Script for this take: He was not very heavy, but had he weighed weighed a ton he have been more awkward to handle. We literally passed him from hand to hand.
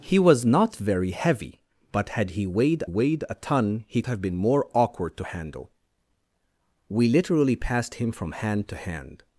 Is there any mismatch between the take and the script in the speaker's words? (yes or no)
no